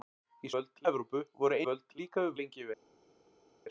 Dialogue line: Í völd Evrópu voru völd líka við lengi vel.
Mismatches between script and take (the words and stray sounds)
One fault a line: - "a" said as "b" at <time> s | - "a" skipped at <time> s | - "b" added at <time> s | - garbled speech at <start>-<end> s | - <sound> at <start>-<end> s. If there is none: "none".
none